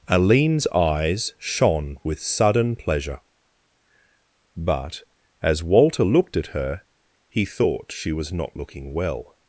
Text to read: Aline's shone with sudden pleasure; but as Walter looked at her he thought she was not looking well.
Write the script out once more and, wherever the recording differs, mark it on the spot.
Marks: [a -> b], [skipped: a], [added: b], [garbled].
Aline's [added: eyes] shone with sudden pleasure; but as Walter looked at her he thought she was not looking well.